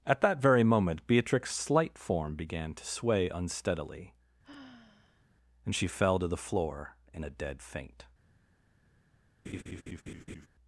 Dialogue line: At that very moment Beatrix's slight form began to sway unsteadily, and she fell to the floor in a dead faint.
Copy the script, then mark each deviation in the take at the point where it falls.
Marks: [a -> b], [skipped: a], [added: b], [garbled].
At that very moment Beatrix's slight form began to sway unsteadily, and she fell to the floor in a dead faint.